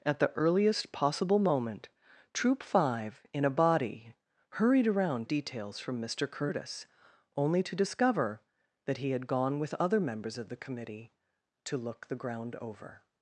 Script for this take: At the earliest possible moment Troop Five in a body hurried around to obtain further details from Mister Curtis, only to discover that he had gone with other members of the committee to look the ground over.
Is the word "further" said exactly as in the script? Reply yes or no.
no